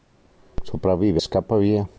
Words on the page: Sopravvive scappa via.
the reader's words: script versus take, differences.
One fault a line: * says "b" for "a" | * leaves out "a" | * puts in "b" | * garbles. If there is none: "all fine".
all fine